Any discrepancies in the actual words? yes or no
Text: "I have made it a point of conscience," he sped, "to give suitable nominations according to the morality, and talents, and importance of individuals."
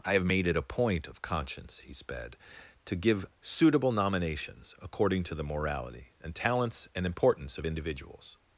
no